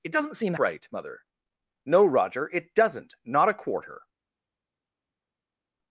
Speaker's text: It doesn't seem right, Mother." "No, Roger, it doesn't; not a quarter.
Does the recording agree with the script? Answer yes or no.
yes